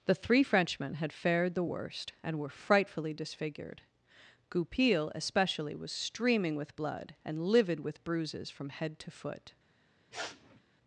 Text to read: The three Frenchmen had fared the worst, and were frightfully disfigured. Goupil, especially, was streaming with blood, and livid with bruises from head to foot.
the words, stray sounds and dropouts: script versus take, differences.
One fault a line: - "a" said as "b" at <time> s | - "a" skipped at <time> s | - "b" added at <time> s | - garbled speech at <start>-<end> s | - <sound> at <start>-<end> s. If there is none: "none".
- sniff at 10.1-10.6 s